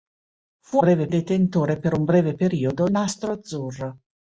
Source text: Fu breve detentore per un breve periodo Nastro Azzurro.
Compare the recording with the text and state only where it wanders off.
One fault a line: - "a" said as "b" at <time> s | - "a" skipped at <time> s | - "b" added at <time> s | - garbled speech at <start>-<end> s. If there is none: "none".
none